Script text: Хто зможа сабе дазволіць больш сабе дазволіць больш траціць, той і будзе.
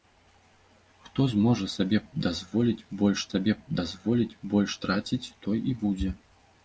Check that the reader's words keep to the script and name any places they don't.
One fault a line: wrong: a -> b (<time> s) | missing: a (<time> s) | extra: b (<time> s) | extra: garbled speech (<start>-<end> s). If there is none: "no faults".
no faults